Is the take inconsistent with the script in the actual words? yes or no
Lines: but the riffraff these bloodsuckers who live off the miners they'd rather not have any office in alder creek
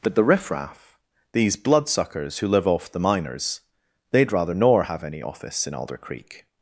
yes